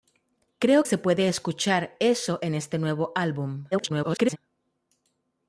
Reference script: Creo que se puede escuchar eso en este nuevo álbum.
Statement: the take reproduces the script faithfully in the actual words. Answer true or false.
false